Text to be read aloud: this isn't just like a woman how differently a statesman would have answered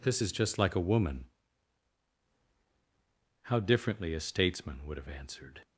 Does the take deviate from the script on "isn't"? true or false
true